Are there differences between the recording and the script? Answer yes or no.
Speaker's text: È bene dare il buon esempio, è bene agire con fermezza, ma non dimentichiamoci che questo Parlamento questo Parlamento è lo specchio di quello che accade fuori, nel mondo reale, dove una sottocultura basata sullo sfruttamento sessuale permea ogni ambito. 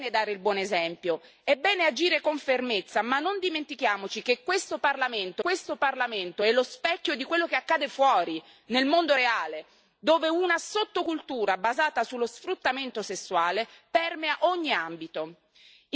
no